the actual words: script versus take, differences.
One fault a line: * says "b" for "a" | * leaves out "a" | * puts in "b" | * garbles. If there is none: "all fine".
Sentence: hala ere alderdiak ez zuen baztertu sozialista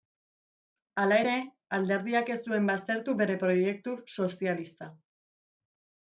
* puts in "bere proiektu"